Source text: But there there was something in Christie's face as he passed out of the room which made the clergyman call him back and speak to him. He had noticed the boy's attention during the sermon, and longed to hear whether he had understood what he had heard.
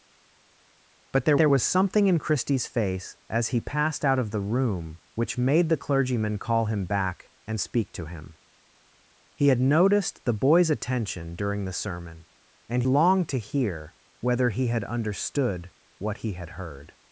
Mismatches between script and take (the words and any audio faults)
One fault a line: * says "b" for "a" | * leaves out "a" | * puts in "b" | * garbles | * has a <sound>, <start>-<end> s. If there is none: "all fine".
all fine